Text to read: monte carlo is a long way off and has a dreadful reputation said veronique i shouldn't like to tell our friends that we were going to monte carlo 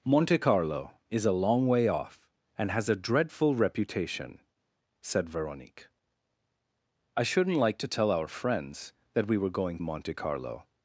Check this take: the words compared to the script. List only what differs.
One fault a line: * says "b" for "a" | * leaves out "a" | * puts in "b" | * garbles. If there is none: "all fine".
* leaves out "to"